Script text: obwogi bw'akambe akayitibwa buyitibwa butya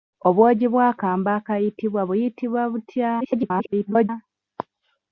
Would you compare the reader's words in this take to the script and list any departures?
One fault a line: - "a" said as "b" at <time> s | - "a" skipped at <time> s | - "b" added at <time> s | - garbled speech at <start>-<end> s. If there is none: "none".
- garbled speech at 3.2-4.1 s